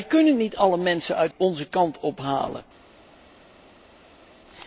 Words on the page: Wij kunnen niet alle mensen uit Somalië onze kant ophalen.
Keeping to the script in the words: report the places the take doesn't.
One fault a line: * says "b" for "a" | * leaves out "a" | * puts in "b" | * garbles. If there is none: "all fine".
* leaves out "Somalië"